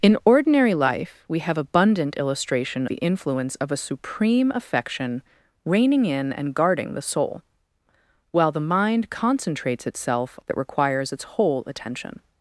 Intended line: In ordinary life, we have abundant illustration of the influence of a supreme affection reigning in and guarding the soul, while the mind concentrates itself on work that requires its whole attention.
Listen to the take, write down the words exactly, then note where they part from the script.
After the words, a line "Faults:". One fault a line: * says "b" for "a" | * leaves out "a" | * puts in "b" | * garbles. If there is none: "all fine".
In ordinary life, we have abundant illustration the influence of a supreme affection reigning in and guarding the soul, while the mind concentrates itself that requires its whole attention.
Faults:
* leaves out "of"
* leaves out "on work"